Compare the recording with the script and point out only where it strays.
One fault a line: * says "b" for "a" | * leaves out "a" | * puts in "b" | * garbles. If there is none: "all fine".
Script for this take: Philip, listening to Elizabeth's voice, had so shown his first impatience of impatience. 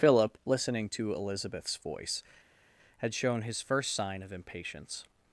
* leaves out "so"
* says "sign" for "impatience"